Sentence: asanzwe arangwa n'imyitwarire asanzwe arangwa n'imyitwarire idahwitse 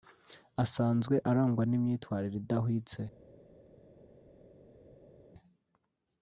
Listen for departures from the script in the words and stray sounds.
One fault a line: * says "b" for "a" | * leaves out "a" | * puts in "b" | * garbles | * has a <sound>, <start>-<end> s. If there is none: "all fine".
* leaves out "asanzwe arangwa n'imyitwarire"